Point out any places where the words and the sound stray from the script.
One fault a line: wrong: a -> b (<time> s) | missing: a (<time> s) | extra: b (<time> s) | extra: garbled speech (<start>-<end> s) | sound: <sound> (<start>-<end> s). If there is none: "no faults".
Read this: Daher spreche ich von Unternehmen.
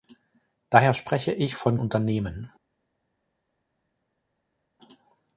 no faults